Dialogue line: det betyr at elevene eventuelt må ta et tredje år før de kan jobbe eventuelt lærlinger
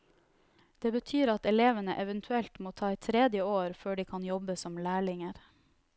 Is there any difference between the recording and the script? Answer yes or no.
yes